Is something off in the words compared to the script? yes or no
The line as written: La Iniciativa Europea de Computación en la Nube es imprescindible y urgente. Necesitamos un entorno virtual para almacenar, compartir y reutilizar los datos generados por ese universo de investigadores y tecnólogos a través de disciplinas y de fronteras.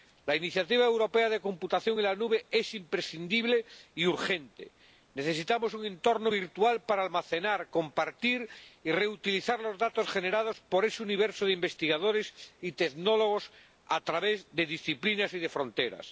no